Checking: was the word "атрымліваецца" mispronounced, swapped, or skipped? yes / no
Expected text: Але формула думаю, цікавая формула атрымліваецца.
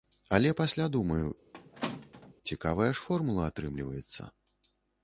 no